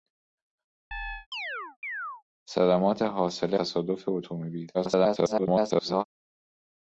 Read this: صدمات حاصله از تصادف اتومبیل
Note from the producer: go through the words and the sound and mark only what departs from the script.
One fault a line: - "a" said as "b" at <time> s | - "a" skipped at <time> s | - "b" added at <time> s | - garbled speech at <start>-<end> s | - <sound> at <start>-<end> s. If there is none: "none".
- chirp at 0.9-2.2 s
- "از" skipped at 3.6 s
- garbled speech at 4.7-6.0 s